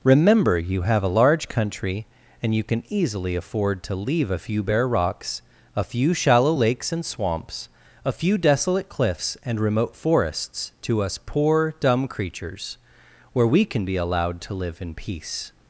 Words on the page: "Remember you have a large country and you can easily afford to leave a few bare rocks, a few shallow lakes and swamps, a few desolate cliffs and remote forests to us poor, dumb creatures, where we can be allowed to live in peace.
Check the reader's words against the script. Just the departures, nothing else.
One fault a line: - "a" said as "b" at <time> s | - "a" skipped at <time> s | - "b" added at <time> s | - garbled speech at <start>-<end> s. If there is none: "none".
none